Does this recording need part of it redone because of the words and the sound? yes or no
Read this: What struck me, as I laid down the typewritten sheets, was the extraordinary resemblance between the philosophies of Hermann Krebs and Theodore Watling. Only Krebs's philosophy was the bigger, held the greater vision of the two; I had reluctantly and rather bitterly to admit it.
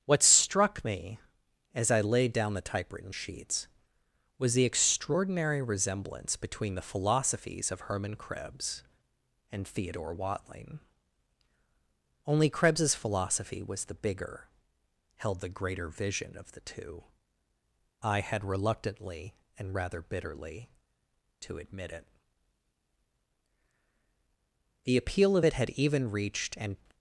yes